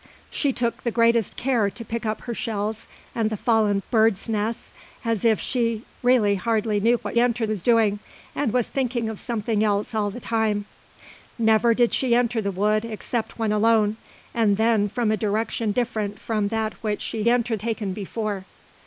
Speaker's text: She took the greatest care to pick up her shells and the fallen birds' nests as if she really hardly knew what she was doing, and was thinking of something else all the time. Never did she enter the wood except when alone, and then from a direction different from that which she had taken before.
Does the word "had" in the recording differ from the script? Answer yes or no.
yes